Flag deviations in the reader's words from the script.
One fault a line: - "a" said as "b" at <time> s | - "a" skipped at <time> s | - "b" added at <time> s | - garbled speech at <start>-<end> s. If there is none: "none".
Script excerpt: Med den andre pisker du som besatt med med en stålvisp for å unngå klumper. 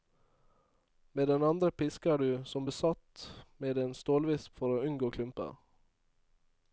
- "med" skipped at 3.8 s